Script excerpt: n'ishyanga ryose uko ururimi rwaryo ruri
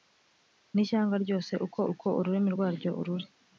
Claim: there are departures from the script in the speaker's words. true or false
true